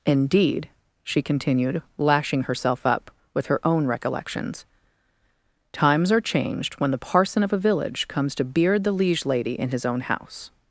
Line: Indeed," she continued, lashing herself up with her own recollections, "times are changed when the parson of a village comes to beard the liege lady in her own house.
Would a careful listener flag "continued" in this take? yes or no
no